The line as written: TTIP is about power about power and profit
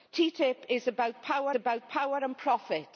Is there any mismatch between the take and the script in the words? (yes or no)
no